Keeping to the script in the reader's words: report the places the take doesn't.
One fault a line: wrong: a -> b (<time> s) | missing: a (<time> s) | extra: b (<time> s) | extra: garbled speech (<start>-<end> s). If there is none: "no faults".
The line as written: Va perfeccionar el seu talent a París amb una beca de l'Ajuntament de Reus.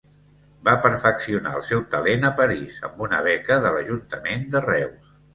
no faults